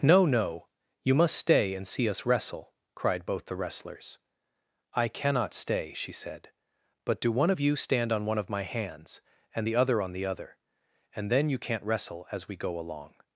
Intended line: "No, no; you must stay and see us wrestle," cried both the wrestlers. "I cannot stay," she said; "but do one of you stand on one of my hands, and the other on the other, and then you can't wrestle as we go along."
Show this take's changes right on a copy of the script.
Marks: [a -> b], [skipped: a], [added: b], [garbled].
"No, no; you must stay and see us wrestle," cried both the wrestlers. "I cannot stay," she said; "but do one of you stand on one of my hands, and the other on the other, and then you can't wrestle as we go along."